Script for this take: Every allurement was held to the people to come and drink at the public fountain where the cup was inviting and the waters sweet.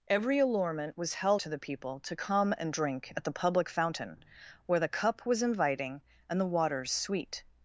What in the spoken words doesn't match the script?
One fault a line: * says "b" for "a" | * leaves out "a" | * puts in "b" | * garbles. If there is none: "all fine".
all fine